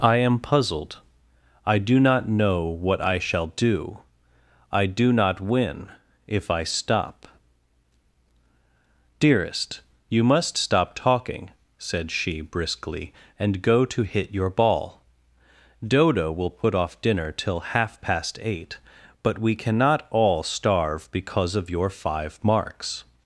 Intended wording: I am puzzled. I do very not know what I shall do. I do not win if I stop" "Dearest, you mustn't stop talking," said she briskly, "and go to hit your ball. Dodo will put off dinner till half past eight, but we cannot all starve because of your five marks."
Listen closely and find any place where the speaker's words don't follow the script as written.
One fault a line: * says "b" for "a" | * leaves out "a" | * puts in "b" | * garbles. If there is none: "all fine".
* leaves out "very"
* says "must" for "mustn't"